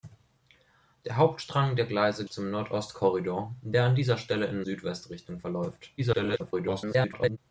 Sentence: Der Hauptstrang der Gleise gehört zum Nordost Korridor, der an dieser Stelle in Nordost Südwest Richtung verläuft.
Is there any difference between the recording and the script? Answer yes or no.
yes